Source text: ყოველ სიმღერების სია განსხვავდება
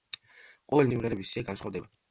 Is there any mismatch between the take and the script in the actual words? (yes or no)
no